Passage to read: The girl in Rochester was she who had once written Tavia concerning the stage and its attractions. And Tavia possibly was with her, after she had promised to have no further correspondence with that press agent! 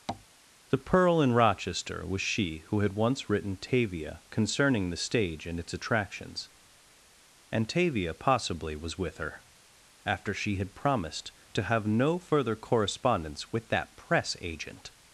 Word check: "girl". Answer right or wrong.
wrong